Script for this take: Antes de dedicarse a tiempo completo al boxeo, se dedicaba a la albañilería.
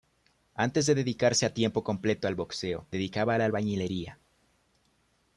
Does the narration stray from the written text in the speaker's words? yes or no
yes